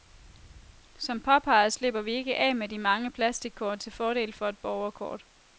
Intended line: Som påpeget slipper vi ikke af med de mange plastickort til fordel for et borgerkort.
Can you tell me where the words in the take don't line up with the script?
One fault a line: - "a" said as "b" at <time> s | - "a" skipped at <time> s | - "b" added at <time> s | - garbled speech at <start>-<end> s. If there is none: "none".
none